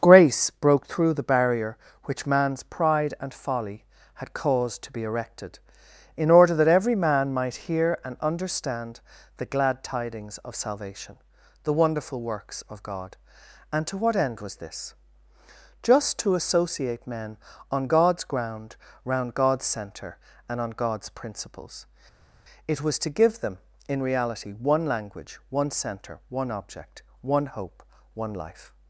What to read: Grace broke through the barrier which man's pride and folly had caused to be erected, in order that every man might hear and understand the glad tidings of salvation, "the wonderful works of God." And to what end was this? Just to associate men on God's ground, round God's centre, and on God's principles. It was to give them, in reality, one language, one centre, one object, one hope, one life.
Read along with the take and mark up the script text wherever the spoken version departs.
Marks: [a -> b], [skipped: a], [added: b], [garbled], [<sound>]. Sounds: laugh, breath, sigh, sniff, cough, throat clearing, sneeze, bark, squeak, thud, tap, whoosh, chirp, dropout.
Grace broke through the barrier which man's pride and folly had caused to be erected, in order that every man might hear and understand the glad tidings of salvation, "the wonderful works of God." And to what end was this? Just to associate men on God's ground, round God's centre, and on God's principles. It was to give them, in reality, one language, one centre, one object, one hope, one life.